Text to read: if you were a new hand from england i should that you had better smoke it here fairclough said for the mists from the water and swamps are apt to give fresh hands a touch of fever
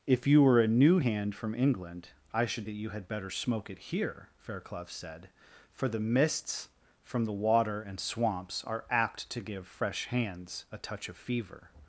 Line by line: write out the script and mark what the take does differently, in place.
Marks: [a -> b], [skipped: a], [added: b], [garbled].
if you were a new hand from england i should that you had better smoke it here fairclough said for the mists from the water and swamps are apt to give fresh hands a touch of fever